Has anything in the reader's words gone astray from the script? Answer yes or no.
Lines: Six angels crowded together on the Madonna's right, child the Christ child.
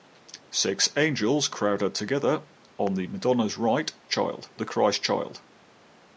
no